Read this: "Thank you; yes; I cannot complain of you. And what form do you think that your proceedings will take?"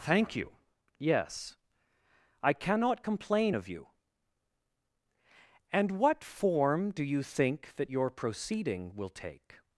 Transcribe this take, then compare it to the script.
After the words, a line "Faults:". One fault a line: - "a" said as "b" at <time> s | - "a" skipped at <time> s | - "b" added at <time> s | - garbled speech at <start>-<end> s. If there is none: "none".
"Thank you; yes; I cannot complain of you. And what form do you think that your proceeding will take?"
Faults:
- "proceedings" said as "proceeding" at 8.1 s